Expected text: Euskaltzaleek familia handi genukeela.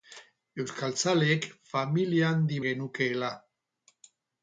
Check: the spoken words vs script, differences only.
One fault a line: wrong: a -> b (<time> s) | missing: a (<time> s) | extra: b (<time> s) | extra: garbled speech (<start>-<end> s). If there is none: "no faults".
no faults